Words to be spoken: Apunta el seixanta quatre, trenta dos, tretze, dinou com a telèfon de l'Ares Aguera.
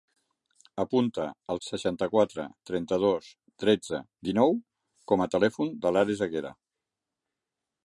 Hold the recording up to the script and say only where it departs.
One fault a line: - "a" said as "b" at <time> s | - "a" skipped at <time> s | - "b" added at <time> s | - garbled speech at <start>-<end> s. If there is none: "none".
none